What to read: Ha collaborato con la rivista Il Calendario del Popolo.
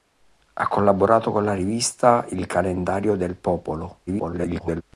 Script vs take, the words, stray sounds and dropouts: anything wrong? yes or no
yes